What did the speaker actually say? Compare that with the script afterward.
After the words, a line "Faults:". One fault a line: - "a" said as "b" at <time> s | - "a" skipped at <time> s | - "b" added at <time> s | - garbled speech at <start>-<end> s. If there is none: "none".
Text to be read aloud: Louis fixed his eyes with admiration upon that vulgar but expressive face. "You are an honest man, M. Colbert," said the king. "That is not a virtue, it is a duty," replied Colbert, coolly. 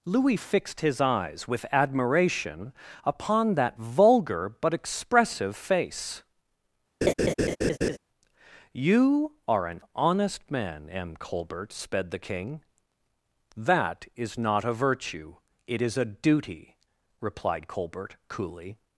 Louis fixed his eyes with admiration upon that vulgar but expressive face. "You are an honest man, M. Colbert," sped the king. "That is not a virtue, it is a duty," replied Colbert, coolly.
Faults:
- "said" said as "sped" at 11.7 s